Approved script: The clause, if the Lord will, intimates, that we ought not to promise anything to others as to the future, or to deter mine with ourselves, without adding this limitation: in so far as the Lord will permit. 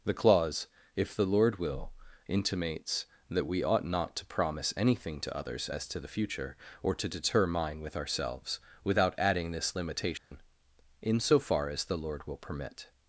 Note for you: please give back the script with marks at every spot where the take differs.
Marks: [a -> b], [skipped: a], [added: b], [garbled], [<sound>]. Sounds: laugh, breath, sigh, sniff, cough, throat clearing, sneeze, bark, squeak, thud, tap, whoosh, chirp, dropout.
The clause, if the Lord will, intimates, that we ought not to promise anything to others as to the future, or to deter mine with ourselves, without adding this limitation: [dropout] in so far as the Lord will permit.